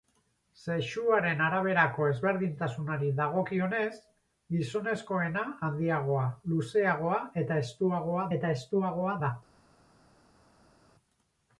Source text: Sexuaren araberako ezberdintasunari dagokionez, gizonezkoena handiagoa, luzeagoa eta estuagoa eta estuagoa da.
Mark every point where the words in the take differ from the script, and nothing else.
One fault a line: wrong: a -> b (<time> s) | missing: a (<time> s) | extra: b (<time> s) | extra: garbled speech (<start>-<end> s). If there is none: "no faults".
no faults